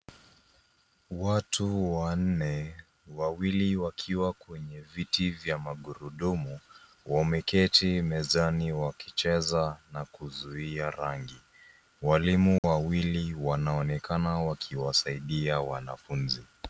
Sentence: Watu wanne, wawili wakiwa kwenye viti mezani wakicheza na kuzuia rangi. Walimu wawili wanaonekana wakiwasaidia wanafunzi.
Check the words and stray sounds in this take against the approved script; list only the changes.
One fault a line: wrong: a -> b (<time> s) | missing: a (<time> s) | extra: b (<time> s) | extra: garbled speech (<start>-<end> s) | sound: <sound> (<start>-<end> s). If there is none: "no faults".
extra: vya magurudumu wameketi (5.3 s)
sound: dropout (12.6-12.6 s)